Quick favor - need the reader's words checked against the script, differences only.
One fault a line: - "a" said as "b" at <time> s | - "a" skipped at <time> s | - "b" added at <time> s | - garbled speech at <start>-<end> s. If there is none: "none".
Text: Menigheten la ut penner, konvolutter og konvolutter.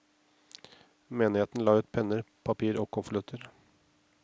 - "konvolutter" said as "papir" at 2.5 s